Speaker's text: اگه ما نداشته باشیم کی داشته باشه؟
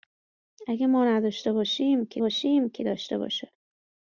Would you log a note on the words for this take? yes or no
yes